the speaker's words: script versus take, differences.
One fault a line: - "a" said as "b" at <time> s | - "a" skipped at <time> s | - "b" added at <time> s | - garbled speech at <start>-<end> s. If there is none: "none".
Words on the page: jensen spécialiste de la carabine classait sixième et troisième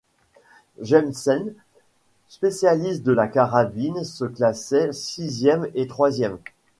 - "se" added at 4.0 s